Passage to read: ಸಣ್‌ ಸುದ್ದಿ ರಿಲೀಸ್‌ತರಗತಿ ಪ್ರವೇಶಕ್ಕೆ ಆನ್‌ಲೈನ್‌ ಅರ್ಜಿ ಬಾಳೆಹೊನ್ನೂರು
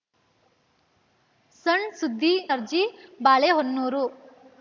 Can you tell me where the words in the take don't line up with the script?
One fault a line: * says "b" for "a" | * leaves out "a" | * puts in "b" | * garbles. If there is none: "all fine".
* leaves out "ರಿಲೀಸ್‌ತರಗತಿ ಪ್ರವೇಶಕ್ಕೆ ಆನ್‌ಲೈನ್"